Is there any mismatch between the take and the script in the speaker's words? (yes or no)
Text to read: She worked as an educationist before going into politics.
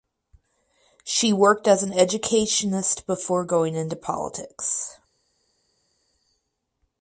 no